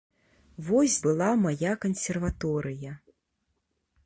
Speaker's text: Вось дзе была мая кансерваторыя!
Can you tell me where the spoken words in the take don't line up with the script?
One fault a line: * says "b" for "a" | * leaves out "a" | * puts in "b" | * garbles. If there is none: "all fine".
* leaves out "дзе"